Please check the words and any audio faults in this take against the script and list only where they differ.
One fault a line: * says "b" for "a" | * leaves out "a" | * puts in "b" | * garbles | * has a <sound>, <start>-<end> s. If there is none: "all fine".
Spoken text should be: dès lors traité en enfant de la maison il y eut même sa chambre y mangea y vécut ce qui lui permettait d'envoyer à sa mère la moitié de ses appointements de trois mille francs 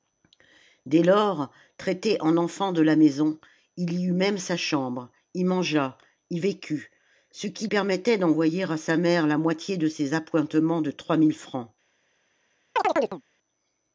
* leaves out "lui"
* has a chirp, 12.8-13.2 s